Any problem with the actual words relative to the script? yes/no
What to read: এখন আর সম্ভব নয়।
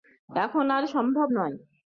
no